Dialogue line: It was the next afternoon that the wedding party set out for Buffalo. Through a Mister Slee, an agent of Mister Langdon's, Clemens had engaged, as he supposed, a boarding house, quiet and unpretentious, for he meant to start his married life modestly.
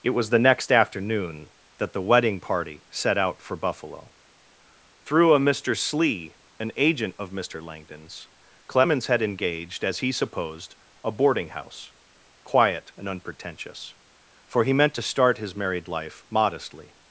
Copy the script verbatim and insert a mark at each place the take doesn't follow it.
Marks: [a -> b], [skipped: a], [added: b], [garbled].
It was the next afternoon that the wedding party set out for Buffalo. Through a Mister Slee, an agent of Mister Langdon's, Clemens had engaged, as he supposed, a boarding house, quiet and unpretentious, for he meant to start his married life modestly.